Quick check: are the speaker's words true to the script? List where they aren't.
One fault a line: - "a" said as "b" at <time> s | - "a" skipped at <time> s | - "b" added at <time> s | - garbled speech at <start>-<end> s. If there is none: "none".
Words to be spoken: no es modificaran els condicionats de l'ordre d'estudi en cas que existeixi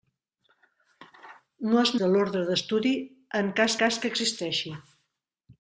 - "modificaran els condicionats" skipped at 1.9 s
- "cas" added at 3.8 s